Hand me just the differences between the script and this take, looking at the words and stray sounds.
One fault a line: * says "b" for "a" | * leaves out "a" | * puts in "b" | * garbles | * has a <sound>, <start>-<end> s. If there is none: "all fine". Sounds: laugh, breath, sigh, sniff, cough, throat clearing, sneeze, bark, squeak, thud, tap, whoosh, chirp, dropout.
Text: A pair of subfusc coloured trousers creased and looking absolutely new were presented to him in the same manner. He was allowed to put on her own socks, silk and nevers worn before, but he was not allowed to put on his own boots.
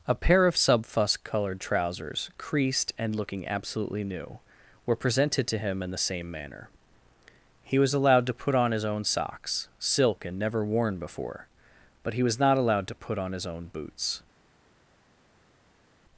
* says "his" for "her"
* says "never" for "nevers"